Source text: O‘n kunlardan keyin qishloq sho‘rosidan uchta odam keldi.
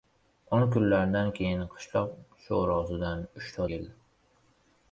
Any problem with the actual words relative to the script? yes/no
yes